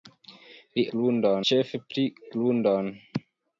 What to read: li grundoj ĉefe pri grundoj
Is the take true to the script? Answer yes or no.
yes